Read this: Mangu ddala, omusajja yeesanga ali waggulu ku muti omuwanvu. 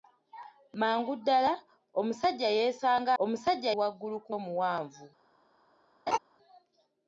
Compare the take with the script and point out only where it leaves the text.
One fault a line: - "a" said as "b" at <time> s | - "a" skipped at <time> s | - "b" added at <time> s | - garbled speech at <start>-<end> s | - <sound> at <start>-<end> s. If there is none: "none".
- "ali" said as "omusajja" at 3.2 s
- "muti" skipped at 4.3 s
- laugh at 6.1-6.2 s